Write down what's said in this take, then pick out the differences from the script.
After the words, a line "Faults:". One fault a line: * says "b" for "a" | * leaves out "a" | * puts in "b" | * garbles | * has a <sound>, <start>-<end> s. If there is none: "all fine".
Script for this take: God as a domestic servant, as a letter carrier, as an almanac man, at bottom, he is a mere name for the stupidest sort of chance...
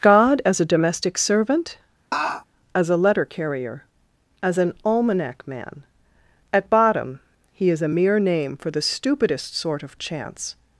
God as a domestic servant, as a letter carrier, as an almanac man, at bottom, he is a mere name for the stupidest sort of chance...
Faults:
* has a laugh, 2.1-2.4 s